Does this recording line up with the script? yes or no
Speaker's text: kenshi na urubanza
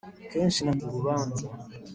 yes